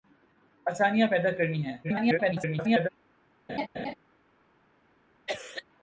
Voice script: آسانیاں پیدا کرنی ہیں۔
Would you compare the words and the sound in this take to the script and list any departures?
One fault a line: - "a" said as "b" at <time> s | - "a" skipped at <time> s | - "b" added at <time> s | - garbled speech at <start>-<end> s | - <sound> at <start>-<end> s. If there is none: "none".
- garbled speech at 1.8-2.9 s
- laugh at 3.5-3.9 s
- cough at 5.3-5.6 s